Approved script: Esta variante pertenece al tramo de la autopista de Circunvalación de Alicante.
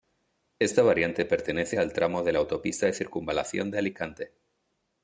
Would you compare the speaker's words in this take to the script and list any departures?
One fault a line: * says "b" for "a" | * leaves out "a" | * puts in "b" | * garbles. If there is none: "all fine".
all fine